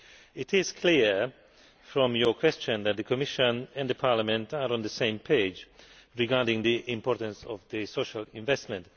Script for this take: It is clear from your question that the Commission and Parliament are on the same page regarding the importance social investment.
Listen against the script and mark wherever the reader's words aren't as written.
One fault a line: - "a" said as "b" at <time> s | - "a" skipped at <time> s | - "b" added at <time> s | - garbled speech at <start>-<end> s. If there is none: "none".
- "of" added at 7.5 s